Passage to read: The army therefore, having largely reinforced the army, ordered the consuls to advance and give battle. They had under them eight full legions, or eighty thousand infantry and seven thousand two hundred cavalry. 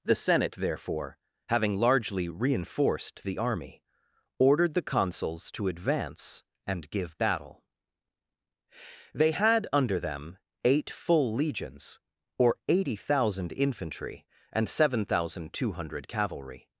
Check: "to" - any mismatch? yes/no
no